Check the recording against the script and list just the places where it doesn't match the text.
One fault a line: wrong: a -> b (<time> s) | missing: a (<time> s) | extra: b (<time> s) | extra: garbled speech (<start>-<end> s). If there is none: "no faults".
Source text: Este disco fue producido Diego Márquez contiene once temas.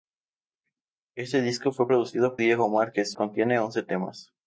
no faults